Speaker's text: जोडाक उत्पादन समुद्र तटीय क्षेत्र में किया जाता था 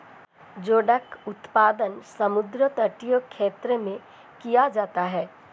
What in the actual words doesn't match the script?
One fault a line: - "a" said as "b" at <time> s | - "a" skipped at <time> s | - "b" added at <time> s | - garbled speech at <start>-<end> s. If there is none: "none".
- "था" said as "है" at 5.0 s